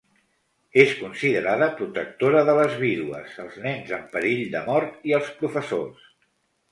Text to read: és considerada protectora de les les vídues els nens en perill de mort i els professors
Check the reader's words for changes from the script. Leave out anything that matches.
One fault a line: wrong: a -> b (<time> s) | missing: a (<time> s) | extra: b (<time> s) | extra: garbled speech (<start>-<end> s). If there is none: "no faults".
missing: les (2.8 s)